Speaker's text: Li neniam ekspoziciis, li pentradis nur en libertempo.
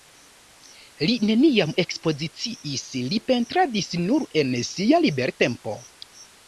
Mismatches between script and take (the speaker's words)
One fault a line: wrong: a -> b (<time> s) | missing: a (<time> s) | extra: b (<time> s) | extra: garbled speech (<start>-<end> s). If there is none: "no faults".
extra: sia (4.7 s)